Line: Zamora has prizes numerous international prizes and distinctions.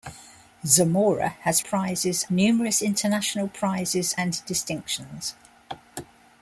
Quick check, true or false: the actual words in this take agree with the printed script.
true